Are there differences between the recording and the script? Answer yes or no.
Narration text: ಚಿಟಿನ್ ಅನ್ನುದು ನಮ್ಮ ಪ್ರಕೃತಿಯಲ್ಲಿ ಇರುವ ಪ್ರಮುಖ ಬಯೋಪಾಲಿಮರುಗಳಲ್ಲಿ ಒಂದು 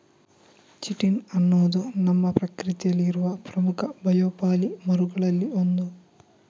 no